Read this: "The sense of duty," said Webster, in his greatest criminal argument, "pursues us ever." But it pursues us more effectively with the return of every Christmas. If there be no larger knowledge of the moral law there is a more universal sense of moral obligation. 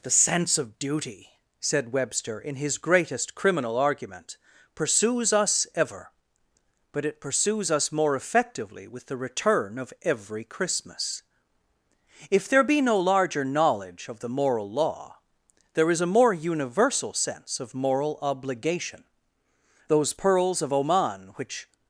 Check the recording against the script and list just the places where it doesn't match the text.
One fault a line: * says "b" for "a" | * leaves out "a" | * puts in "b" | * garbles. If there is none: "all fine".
* puts in "Those pearls of Oman which"